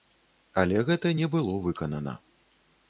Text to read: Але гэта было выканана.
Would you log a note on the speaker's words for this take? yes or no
yes